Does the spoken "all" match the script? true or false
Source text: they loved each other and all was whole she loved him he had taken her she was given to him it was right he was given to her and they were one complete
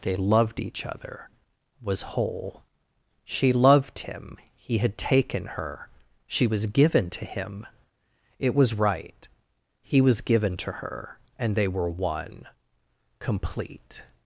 false